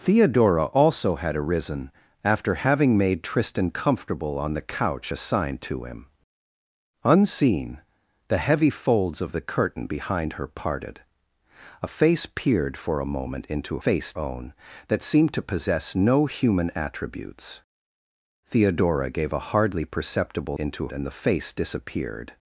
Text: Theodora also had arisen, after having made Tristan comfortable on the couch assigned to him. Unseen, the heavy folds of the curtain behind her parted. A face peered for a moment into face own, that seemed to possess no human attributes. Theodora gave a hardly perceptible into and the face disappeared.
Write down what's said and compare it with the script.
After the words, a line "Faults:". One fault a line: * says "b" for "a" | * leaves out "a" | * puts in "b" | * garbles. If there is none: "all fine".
Theodora also had arisen, after having made Tristan comfortable on the couch assigned to him. Unseen, the heavy folds of the curtain behind her parted. A face peered for a moment into face own, that seemed to possess no human attributes. Theodora gave a hardly perceptible into and the face disappeared.
Faults:
all fine